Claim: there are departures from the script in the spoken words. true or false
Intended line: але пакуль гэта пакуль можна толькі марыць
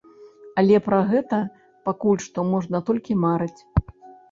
true